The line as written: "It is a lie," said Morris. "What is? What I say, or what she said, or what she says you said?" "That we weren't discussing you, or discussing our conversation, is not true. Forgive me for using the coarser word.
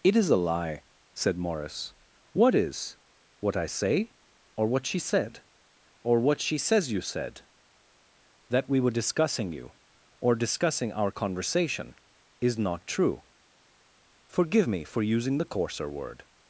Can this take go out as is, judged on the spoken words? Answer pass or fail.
fail